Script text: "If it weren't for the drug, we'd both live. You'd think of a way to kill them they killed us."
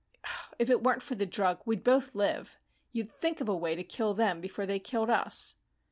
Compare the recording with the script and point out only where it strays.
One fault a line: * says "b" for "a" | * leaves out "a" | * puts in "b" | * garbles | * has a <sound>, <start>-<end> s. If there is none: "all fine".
* puts in "before"